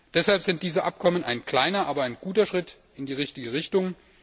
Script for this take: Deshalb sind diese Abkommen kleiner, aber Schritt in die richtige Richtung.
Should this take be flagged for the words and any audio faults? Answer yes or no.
yes